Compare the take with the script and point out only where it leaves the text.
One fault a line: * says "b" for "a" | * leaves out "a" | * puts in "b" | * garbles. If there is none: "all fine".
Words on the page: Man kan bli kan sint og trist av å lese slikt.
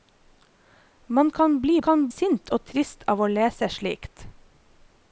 all fine